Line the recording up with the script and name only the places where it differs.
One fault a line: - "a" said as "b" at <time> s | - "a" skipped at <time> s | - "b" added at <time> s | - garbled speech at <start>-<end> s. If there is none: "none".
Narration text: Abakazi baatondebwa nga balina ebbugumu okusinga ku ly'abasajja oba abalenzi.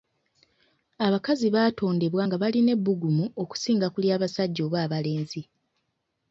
none